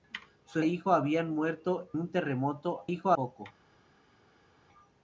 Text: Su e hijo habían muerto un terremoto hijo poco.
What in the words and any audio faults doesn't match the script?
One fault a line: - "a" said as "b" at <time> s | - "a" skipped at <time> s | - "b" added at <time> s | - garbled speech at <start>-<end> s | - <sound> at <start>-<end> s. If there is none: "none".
none